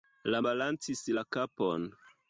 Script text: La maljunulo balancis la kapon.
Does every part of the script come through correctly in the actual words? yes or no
no